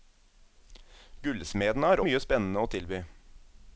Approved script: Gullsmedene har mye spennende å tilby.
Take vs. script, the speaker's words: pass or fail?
pass